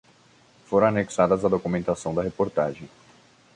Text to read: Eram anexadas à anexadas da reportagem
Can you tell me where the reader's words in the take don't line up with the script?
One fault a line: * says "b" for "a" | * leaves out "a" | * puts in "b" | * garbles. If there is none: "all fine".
* says "Foram" for "Eram"
* says "documentação" for "anexadas"